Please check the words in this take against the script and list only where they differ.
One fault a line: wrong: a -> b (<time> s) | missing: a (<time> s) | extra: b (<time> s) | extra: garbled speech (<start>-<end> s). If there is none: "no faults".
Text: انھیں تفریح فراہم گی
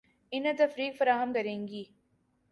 extra: کریں (1.3 s)